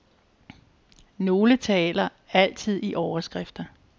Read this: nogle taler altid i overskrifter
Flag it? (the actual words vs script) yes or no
no